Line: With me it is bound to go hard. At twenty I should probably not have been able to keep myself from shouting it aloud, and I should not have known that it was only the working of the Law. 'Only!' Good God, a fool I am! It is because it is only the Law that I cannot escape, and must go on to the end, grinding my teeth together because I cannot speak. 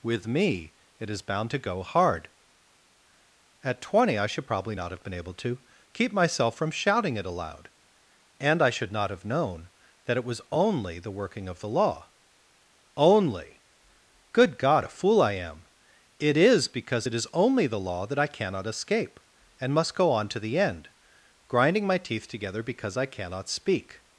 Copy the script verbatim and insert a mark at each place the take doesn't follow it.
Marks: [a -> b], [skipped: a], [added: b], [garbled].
With me it is bound to go hard. At twenty I should probably not have been able to keep myself from shouting it aloud, and I should not have known that it was only the working of the Law. 'Only!' Good God, a fool I am! It is because it is only the Law that I cannot escape, and must go on to the end, grinding my teeth together because I cannot speak.